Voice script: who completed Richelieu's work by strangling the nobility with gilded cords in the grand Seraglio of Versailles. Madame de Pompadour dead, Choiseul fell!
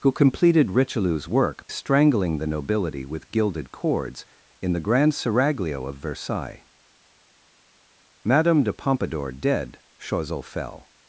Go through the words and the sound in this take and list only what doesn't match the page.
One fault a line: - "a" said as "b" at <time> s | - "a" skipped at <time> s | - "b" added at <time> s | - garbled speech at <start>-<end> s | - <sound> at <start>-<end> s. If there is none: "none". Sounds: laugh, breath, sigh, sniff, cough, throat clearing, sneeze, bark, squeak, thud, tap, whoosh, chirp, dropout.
- "by" skipped at 1.7 s